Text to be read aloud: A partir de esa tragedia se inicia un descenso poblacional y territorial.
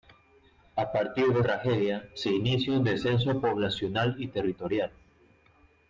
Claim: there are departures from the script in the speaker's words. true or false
true